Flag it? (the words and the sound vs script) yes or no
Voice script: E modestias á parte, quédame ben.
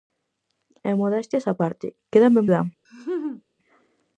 yes